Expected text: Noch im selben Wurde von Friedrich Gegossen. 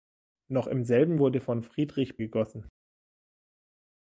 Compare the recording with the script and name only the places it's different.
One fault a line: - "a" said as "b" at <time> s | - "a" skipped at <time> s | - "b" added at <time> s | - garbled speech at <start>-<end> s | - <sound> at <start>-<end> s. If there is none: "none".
none